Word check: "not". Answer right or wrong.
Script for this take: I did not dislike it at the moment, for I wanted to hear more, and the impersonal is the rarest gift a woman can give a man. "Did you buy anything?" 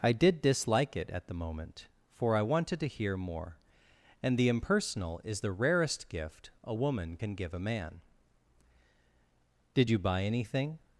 wrong